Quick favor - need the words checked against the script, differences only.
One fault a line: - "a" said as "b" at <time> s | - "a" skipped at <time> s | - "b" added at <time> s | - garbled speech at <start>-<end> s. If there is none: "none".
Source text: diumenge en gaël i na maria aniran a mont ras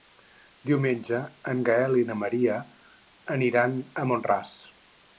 none